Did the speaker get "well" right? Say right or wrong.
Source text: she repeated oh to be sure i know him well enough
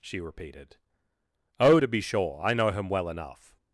right